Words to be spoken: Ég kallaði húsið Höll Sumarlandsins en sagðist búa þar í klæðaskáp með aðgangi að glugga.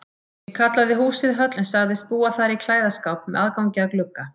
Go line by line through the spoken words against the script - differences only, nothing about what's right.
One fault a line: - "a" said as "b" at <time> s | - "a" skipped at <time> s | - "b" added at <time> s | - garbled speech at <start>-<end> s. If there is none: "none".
- "Sumarlandsins" skipped at 1.5 s